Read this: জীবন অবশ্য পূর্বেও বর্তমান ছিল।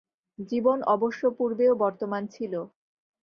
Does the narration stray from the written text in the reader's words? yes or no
no